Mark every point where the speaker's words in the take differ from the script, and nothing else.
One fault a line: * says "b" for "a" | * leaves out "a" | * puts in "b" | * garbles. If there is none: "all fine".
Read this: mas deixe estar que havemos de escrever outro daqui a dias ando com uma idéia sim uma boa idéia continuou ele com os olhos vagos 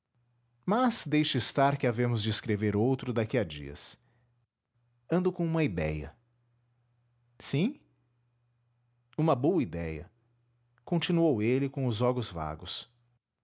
all fine